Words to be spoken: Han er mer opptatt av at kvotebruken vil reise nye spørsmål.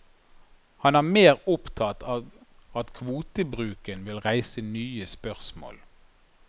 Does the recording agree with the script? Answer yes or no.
yes